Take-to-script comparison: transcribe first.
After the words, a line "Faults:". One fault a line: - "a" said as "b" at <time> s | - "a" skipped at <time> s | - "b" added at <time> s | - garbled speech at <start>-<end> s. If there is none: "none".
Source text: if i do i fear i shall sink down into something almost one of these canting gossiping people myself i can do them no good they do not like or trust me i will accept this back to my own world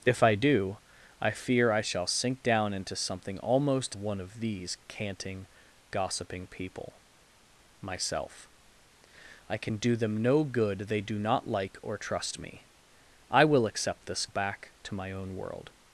if i do i fear i shall sink down into something almost one of these canting gossiping people myself i can do them no good they do not like or trust me i will accept this back to my own world
Faults:
none